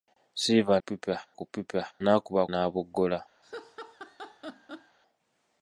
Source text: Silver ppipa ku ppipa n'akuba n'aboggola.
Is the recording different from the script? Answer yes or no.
no